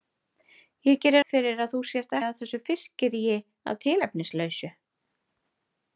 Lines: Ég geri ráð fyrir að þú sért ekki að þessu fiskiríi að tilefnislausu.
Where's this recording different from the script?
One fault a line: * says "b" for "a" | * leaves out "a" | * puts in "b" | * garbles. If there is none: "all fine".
* leaves out "ráð"
* leaves out "ekki"